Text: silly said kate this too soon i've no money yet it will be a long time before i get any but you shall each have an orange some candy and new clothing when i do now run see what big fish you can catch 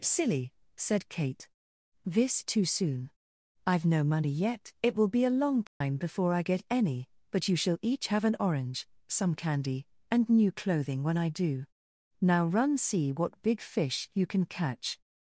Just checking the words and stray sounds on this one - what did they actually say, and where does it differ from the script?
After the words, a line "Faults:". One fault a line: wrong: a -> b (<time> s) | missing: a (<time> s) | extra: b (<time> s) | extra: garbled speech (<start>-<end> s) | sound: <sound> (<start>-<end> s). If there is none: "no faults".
silly said kate this too soon i've no money yet it will be a long time before i get any but you shall each have an orange some candy and new clothing when i do now run see what big fish you can catch
Faults:
sound: dropout (5.7-5.8 s)